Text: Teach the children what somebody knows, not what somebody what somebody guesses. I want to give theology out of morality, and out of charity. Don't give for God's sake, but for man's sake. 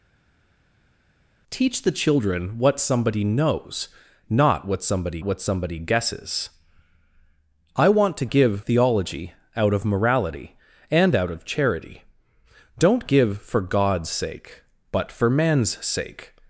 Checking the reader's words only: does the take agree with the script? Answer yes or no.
yes